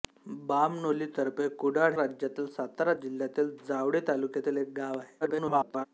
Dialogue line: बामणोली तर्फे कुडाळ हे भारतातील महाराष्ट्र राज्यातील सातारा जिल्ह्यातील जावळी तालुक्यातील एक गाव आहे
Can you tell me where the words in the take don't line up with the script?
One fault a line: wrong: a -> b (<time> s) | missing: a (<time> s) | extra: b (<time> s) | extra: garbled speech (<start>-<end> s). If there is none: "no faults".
missing: हे भारतातील महाराष्ट्र (1.9 s)
extra: garbled speech (5.2-5.9 s)